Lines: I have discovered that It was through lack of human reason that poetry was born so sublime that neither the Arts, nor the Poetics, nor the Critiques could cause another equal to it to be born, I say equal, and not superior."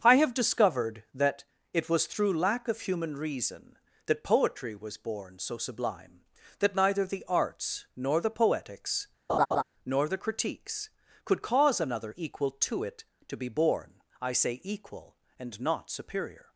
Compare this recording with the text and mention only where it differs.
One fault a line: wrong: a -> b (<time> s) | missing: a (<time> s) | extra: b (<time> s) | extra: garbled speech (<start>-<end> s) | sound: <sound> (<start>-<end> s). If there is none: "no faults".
sound: laugh (9.3-9.6 s)